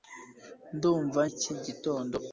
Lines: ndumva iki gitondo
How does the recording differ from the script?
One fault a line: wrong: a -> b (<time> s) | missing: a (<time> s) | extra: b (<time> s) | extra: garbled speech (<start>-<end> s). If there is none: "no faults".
no faults